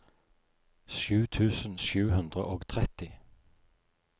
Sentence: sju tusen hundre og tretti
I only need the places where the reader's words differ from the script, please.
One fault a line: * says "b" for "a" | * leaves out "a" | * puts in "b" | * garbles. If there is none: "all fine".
* puts in "sju"